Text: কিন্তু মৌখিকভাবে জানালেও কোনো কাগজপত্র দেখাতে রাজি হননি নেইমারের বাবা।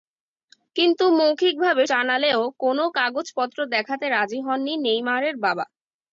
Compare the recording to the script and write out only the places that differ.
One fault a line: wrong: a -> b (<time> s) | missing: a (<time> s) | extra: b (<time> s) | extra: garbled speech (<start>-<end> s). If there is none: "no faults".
no faults